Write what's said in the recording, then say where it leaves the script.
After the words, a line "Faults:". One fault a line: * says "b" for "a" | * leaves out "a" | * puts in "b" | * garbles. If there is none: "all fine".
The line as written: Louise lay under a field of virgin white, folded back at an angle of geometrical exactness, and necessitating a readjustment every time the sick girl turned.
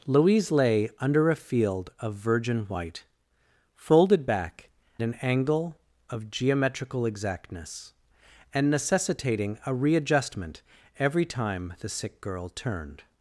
Louise lay under a field of virgin white, folded back an angle of geometrical exactness, and necessitating a readjustment every time the sick girl turned.
Faults:
* leaves out "at"